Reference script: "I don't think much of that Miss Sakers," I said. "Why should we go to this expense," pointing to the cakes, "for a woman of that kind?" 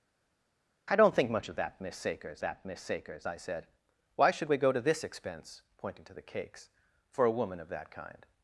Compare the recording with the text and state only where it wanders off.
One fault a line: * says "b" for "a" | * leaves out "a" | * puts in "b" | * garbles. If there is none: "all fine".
* puts in "that Miss Sakers"